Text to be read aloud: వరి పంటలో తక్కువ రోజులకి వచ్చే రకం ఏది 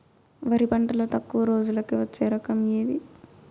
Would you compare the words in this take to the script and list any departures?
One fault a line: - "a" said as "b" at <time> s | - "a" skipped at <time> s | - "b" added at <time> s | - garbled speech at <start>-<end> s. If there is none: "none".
none